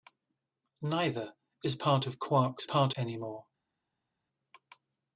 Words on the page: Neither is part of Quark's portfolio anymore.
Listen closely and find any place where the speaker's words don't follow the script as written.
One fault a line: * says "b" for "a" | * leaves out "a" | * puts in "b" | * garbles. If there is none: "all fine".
* says "part" for "portfolio"